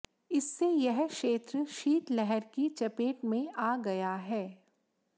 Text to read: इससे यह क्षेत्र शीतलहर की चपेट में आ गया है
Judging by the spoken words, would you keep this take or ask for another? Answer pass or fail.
pass